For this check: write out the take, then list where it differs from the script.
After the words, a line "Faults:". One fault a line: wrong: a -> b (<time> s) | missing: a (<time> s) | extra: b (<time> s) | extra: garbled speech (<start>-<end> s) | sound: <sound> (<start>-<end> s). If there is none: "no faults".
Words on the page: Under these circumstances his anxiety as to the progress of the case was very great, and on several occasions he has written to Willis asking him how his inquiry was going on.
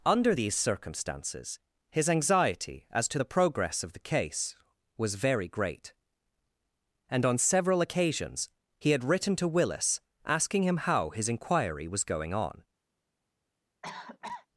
Under these circumstances his anxiety as to the progress of the case was very great, and on several occasions he had written to Willis asking him how his inquiry was going on.
Faults:
wrong: has -> had (8.9 s)
sound: cough (13.8-14.5 s)